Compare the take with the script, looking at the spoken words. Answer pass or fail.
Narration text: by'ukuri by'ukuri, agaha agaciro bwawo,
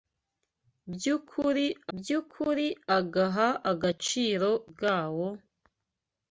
pass